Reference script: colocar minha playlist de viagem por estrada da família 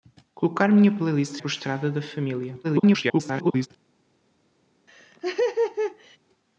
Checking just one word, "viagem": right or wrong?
wrong